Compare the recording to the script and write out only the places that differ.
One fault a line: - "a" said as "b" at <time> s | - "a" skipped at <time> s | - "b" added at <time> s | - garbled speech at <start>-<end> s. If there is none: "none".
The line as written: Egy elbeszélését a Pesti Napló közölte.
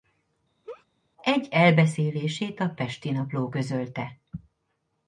none